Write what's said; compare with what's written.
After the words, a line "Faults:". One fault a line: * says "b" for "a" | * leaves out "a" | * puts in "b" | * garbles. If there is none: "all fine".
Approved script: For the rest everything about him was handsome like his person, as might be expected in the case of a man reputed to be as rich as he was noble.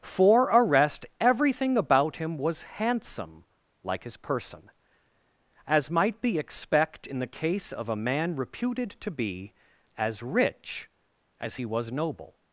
For a rest everything about him was handsome like his person, as might be expect in the case of a man reputed to be as rich as he was noble.
Faults:
* says "a" for "the"
* says "expect" for "expected"